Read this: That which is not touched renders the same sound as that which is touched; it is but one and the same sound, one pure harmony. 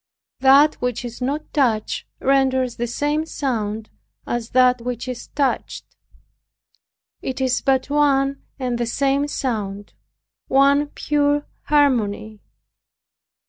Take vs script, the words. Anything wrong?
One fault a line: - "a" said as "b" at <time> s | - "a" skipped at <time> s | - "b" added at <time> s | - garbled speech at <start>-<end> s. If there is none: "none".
none